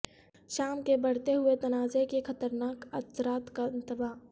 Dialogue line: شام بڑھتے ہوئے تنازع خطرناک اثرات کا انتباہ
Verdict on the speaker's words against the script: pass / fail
fail